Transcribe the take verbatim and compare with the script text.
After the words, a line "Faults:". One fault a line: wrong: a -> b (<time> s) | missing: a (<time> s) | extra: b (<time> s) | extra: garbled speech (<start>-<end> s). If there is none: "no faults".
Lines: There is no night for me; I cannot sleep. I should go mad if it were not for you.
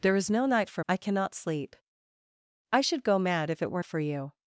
There is no night for; I cannot sleep. I should go mad if it were for you.
Faults:
missing: me (0.8 s)
missing: not (3.8 s)